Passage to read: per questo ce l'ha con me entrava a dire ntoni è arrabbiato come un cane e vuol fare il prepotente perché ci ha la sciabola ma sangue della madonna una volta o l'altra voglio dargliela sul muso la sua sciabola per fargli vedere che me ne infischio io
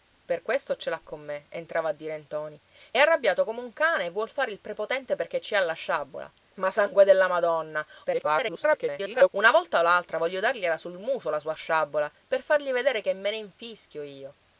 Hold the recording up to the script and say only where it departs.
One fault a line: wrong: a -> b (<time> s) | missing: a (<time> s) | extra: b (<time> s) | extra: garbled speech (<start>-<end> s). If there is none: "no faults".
extra: garbled speech (8.0-9.3 s)